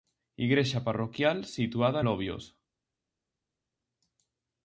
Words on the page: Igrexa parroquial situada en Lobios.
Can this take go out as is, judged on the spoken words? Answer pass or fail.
fail